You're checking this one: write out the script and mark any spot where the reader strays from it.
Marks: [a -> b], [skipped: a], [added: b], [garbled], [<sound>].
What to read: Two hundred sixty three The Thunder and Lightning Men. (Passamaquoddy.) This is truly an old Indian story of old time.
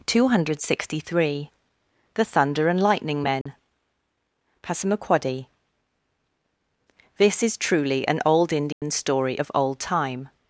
Two hundred sixty three The Thunder and Lightning Men. [dropout] (Passamaquoddy.) This is truly an old Indian [dropout] story of old time.